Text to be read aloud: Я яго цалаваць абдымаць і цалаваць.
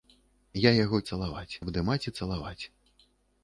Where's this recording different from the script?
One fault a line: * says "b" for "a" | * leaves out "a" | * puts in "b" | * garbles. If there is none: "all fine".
all fine